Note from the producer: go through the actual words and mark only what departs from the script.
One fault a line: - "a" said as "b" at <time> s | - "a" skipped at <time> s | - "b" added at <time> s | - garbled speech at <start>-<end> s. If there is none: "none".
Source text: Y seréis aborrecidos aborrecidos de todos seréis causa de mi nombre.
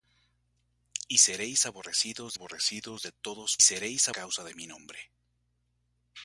none